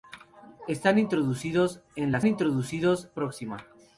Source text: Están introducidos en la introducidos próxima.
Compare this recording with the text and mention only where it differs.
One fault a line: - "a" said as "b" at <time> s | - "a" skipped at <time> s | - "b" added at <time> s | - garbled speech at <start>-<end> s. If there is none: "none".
none